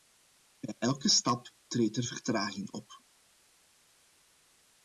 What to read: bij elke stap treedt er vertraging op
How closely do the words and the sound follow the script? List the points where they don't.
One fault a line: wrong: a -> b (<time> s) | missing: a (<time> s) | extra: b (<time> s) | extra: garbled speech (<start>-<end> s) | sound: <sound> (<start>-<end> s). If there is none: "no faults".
no faults